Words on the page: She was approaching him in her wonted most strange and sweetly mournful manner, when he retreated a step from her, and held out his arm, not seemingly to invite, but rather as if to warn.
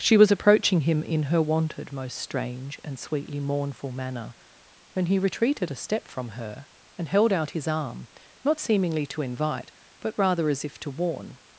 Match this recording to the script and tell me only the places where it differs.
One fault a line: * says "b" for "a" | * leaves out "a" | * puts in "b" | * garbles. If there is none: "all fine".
all fine